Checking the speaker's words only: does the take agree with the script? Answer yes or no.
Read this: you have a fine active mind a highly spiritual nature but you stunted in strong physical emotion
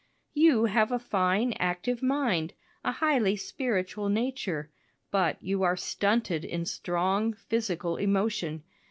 no